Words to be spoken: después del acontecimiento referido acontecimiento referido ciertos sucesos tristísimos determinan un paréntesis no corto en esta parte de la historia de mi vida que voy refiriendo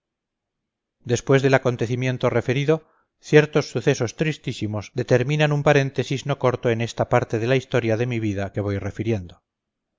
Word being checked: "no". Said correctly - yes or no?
yes